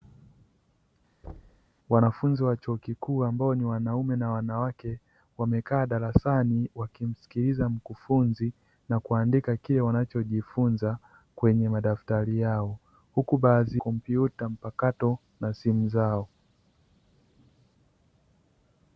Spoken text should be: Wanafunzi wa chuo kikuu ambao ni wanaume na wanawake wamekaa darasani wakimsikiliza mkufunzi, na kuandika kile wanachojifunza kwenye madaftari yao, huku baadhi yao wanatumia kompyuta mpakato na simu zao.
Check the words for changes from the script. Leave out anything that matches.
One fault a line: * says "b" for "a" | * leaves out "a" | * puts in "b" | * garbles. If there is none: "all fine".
* leaves out "yao wanatumia"